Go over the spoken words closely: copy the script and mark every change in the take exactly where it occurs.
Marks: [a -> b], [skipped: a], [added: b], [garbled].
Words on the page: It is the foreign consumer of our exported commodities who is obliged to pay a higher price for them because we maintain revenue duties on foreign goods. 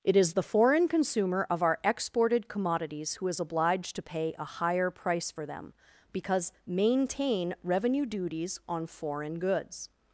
It is the foreign consumer of our exported commodities who is obliged to pay a higher price for them because [skipped: we] maintain revenue duties on foreign goods.